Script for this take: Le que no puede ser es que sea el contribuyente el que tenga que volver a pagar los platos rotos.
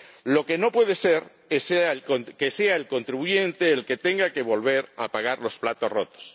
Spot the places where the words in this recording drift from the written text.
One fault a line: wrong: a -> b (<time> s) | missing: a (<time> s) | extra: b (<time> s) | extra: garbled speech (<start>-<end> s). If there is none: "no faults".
wrong: Le -> Lo (0.2 s)